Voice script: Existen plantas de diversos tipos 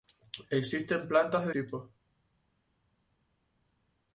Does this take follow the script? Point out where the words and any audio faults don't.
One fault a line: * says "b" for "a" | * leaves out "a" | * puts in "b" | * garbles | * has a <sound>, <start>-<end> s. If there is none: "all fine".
* leaves out "diversos"